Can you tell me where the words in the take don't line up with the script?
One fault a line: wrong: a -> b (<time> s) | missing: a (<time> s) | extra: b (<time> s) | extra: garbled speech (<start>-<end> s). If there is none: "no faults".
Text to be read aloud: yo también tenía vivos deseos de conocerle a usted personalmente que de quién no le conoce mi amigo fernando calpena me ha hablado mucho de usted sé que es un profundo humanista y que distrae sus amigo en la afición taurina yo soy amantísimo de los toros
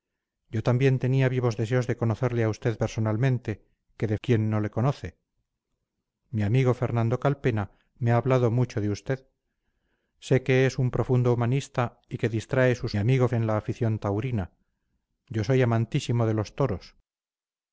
no faults